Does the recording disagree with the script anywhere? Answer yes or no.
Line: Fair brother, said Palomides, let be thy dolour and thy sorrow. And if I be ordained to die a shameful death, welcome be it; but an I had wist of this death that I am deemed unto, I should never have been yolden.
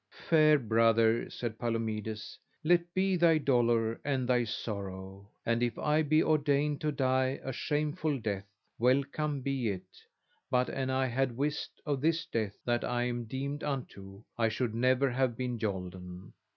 no